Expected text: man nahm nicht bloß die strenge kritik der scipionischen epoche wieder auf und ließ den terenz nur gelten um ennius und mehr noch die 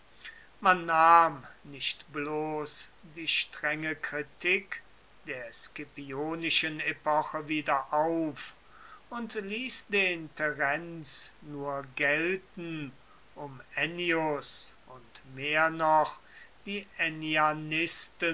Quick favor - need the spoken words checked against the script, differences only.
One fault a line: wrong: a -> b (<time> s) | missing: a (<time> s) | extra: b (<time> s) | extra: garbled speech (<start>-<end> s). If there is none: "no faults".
no faults